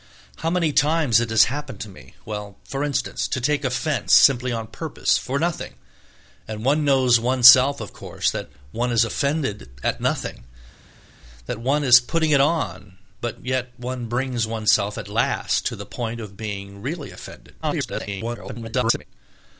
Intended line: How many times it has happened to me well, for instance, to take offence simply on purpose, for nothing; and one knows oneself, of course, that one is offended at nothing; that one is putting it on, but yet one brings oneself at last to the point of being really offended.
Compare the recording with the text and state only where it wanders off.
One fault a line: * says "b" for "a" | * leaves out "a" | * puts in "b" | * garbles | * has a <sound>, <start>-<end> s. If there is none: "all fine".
* garbles